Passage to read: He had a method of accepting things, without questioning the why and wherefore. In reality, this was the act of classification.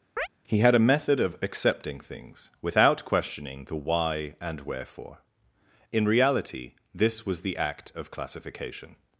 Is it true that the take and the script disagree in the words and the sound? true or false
true